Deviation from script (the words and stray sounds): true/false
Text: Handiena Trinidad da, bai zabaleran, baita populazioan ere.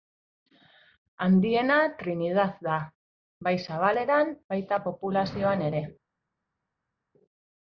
false